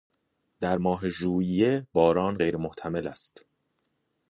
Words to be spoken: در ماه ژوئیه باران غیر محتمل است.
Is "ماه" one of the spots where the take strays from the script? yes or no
no